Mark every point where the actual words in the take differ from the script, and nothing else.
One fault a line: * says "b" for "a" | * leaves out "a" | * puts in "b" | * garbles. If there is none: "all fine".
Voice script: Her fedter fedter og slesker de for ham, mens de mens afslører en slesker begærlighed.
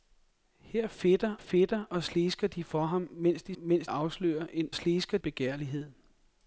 all fine